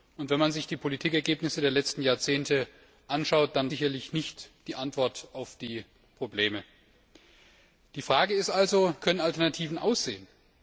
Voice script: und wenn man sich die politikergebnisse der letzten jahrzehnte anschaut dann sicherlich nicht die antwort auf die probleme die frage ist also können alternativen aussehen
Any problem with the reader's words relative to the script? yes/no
no